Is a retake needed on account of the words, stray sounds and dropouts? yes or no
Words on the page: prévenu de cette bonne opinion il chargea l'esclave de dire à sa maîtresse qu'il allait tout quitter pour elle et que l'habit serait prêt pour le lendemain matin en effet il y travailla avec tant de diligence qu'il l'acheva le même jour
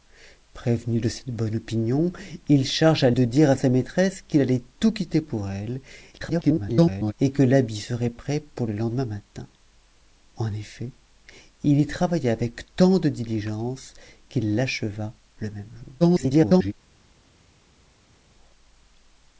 yes